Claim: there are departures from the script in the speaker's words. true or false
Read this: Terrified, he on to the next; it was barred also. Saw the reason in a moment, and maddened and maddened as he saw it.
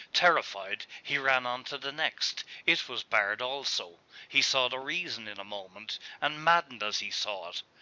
true